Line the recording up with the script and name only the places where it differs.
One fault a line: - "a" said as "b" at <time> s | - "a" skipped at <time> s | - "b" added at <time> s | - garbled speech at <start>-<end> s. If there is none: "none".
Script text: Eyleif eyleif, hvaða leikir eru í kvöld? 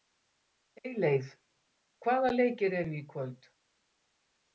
- "eyleif" skipped at 1.3 s